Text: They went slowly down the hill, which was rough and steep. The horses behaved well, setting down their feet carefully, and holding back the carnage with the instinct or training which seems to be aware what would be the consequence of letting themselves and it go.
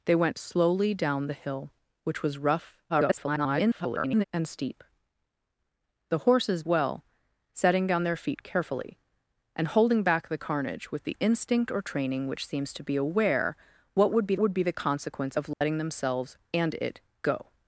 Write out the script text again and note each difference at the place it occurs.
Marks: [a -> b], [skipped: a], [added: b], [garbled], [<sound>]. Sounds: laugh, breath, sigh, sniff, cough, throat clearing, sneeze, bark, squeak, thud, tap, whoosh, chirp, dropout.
They went slowly down the hill, which was rough [garbled] and steep. The horses [skipped: behaved] well, setting down their feet carefully, and holding back the carnage with the instinct or training which seems to be aware what would be [added: would be] the consequence of letting [dropout] themselves and it go.